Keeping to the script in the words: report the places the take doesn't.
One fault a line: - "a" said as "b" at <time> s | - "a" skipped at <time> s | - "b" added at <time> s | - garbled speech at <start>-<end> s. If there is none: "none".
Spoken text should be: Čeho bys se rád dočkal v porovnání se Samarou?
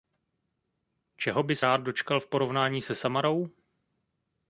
- "se" skipped at 1.6 s